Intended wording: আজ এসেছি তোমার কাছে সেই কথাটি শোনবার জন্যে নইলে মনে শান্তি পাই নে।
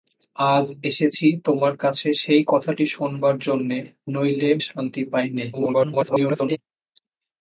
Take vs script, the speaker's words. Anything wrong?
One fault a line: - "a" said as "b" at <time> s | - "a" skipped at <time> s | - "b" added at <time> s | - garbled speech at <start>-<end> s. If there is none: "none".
- "মনে" skipped at 4.5 s
- garbled speech at 5.5-6.6 s